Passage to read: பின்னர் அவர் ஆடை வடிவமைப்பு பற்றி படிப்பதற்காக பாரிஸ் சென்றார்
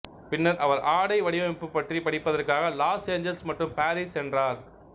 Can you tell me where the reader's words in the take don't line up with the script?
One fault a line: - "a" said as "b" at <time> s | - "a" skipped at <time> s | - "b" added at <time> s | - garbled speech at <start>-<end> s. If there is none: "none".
- "லாஸ் ஏஞ்சல்ஸ் மற்றும்" added at 2.8 s